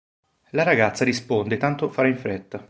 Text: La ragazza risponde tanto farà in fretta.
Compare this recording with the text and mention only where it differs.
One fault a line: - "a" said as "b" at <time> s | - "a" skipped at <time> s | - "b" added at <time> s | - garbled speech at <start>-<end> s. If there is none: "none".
none